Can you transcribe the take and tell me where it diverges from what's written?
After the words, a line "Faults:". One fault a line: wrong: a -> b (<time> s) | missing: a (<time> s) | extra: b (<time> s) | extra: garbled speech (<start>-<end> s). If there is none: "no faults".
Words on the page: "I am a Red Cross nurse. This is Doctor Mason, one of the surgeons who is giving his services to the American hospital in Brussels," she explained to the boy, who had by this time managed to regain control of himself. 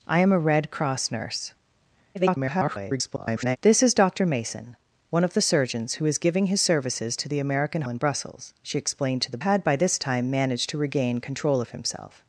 "I am a Red Cross nurse. [garbled] This is Doctor Mason, one of the surgeons who is giving his services to the American in Brussels," she explained to the had by this time managed to regain control of himself.
Faults:
extra: garbled speech (2.1-3.6 s)
missing: hospital (7.8 s)
missing: boy who (9.4 s)